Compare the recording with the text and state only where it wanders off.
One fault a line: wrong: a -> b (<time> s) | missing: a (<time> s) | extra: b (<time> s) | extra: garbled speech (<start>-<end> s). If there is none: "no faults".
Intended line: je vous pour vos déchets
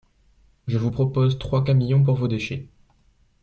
extra: propose trois camions (0.9 s)